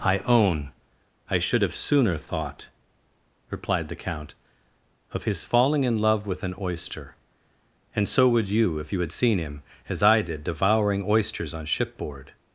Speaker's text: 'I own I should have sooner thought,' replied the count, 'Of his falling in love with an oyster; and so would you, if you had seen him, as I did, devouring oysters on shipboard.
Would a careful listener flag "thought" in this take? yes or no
no